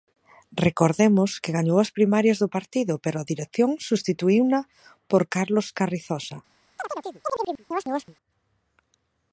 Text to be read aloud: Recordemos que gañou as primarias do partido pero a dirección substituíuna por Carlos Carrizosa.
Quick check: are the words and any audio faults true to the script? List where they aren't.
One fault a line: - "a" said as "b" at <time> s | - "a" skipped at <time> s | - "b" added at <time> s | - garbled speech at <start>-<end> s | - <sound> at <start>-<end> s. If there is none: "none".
- chirp at 6.8-8.2 s